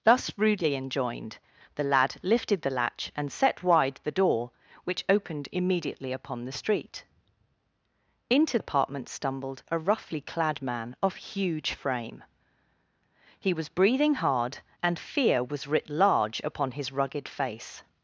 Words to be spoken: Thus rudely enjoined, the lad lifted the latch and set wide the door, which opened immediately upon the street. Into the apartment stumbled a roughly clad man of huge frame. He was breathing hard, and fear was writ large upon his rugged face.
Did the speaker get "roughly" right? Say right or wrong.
right